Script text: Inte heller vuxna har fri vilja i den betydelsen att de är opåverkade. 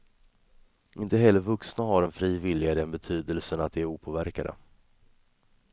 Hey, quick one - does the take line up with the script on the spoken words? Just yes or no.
no